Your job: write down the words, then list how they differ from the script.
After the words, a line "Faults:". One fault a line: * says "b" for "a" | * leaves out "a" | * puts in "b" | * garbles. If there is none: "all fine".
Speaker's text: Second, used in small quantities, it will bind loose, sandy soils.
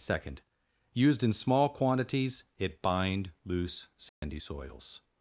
Second, used in small quantities, it bind loose, sandy soils.
Faults:
* leaves out "will"